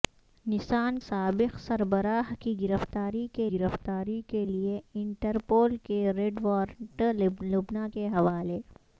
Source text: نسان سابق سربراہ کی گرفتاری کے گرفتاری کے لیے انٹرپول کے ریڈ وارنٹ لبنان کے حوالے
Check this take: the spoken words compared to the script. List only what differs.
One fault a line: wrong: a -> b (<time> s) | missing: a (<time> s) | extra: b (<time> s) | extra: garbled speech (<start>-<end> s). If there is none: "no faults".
no faults